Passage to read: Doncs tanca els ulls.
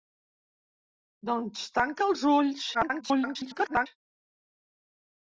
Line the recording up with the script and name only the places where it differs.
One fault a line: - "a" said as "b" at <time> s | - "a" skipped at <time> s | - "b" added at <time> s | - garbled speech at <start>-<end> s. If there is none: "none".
- garbled speech at 2.7-3.9 s